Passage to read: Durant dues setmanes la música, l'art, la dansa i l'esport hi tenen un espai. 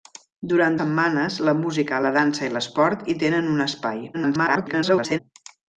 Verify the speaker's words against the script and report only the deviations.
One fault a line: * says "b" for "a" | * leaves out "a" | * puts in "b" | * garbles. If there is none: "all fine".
* leaves out "dues"
* leaves out "l'art"
* garbles